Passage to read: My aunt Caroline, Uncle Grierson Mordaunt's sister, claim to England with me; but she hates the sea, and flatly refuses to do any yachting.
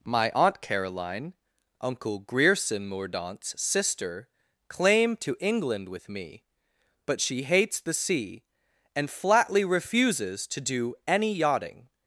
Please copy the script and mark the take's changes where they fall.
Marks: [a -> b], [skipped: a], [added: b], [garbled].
My aunt Caroline, Uncle Grierson Mordaunt's sister, claim to England with me; but she hates the sea, and flatly refuses to do any yachting.